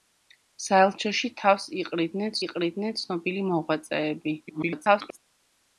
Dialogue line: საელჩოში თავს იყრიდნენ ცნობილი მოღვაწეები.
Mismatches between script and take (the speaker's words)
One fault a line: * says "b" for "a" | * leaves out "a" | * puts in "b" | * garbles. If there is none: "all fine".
* puts in "იყრიდნენ"
* garbles